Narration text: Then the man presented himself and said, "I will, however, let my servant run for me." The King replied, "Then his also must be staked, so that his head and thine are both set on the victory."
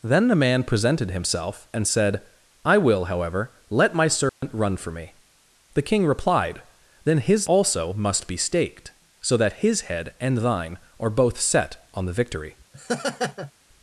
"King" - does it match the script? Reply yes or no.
yes